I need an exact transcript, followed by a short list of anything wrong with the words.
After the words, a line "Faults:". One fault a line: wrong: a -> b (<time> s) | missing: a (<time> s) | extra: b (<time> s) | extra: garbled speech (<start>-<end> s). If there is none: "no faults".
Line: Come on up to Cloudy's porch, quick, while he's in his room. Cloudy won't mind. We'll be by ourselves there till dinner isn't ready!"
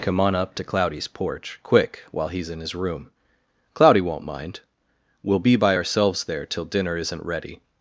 Come on up to Cloudy's porch, quick, while he's in his room. Cloudy won't mind. We'll be by ourselves there till dinner isn't ready!"
Faults:
no faults